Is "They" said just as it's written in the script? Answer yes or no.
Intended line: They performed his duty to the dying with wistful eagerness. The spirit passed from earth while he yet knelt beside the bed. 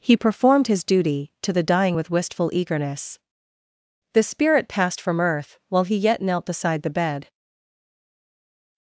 no